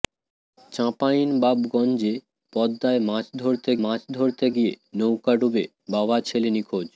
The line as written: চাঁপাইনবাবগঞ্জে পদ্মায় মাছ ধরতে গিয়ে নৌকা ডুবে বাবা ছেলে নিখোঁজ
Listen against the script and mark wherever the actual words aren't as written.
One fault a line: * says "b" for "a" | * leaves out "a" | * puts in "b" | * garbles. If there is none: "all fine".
* puts in "মাছ ধরতে"